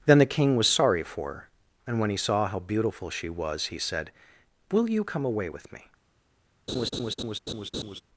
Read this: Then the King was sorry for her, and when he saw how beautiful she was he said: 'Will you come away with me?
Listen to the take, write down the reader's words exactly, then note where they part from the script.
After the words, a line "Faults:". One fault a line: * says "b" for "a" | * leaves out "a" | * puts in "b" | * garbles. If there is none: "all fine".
Then the King was sorry for her, and when he saw how beautiful she was he said: 'Will you come away with me?
Faults:
all fine